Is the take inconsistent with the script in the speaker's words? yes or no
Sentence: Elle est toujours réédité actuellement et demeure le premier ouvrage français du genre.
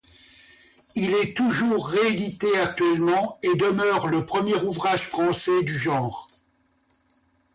yes